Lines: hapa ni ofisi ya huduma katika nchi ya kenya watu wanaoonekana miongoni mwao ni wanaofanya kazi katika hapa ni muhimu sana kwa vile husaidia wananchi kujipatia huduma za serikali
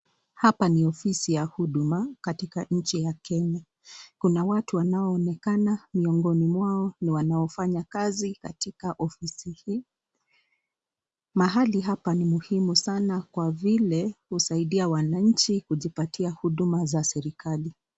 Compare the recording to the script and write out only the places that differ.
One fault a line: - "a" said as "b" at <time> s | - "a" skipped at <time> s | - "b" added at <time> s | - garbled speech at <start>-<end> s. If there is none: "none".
- "kuna" added at 4.2 s
- "ofisi hii mahali" added at 9.0 s